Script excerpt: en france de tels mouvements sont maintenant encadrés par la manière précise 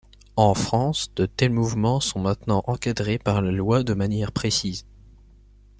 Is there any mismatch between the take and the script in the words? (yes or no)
yes